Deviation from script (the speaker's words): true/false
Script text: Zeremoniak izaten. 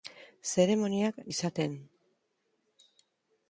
false